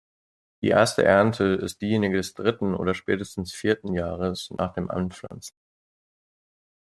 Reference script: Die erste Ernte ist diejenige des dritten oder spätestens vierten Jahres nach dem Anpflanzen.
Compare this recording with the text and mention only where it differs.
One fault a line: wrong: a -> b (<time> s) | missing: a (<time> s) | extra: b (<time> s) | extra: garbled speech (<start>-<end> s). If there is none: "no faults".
no faults